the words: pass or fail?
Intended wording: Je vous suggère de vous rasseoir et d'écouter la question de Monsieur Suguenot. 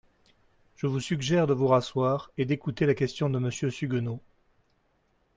pass